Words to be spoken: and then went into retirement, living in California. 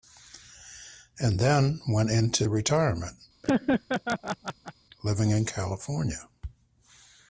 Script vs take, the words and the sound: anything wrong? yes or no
yes